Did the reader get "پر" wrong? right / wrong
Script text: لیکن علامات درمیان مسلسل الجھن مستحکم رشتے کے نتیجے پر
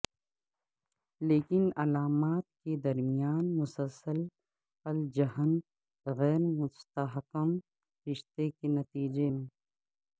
wrong